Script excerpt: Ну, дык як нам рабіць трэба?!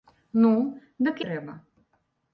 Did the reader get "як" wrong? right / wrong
wrong